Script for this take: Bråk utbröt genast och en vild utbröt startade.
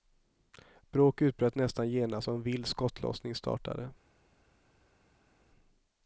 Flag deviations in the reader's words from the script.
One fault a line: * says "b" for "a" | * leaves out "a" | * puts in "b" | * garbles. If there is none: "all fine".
* puts in "nästan"
* says "skottlossning" for "utbröt"